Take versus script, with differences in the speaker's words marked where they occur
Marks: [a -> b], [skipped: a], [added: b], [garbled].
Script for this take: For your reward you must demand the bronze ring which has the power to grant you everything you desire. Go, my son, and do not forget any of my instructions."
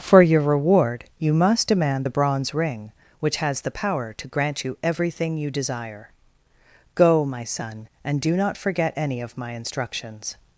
For your reward you must demand the bronze ring which has the power to grant you everything you desire. Go, my son, and do not forget any of my instructions."